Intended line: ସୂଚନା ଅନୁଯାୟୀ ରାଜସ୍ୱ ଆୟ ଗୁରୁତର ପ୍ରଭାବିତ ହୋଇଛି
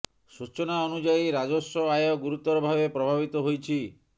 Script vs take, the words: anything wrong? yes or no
yes